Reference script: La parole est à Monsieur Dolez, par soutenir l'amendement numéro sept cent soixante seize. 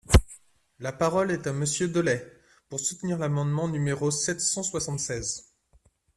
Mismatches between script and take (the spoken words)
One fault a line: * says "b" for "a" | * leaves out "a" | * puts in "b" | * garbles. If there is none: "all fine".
* says "pour" for "par"